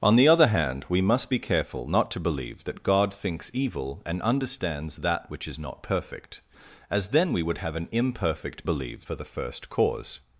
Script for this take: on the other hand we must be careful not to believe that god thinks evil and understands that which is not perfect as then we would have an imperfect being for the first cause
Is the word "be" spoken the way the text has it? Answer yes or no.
yes